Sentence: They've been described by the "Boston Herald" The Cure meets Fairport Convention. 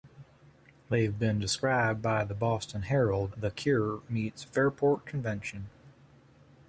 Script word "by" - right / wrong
right